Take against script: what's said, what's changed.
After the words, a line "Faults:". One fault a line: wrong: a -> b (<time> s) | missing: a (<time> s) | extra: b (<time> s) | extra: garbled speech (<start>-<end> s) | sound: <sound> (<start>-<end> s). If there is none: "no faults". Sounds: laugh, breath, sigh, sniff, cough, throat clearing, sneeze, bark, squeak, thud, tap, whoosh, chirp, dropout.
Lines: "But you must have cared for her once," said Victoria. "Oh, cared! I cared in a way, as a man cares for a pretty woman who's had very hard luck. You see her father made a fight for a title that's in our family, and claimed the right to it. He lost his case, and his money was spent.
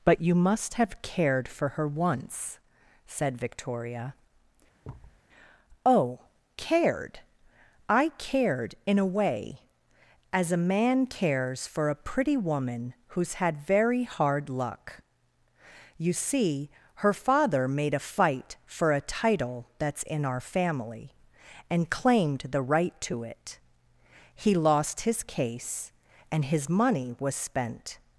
"But you must have cared for her once," said Victoria. "Oh, cared! I cared in a way, as a man cares for a pretty woman who's had very hard luck. You see her father made a fight for a title that's in our family, and claimed the right to it. He lost his case, and his money was spent.
Faults:
sound: thud (4.8-5.2 s)